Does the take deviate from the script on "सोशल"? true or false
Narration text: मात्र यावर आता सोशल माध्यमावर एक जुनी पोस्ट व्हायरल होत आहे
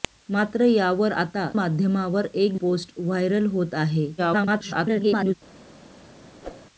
true